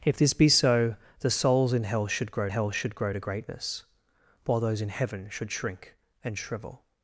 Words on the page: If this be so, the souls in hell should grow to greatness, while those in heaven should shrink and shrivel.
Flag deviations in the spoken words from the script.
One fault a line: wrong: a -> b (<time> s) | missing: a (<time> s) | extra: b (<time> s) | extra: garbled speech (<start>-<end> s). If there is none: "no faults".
extra: hell should grow (2.5 s)